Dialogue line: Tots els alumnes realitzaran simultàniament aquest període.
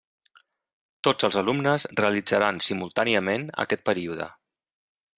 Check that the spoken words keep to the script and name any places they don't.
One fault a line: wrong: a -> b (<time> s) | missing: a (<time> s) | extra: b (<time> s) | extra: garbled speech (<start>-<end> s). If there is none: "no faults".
no faults